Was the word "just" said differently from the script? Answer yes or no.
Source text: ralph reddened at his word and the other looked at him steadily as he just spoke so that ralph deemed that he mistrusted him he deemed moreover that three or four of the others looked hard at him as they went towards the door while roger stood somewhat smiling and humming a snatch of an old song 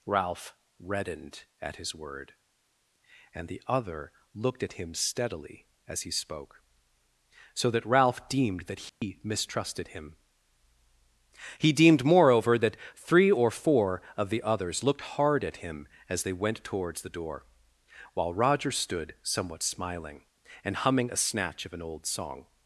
yes